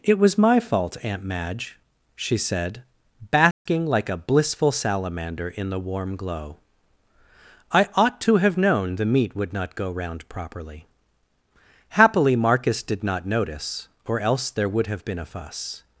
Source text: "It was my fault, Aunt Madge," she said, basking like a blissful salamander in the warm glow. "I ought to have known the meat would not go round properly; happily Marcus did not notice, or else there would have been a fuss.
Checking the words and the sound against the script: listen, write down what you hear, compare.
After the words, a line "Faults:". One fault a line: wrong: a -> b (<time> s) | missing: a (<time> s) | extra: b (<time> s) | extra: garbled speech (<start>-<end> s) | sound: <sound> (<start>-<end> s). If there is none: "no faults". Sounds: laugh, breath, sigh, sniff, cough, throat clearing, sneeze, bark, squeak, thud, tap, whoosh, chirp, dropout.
"It was my fault, Aunt Madge," she said, basking like a blissful salamander in the warm glow. "I ought to have known the meat would not go round properly; happily Marcus did not notice, or else there would have been a fuss.
Faults:
sound: dropout (3.5-3.7 s)